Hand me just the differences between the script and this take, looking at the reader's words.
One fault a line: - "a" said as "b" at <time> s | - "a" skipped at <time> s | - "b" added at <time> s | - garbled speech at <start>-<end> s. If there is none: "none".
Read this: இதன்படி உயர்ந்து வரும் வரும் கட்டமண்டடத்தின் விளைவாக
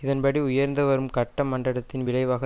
- "வரும்" skipped at 1.1 s